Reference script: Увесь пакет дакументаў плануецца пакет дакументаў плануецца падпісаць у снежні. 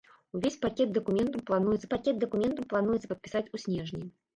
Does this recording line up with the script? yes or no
yes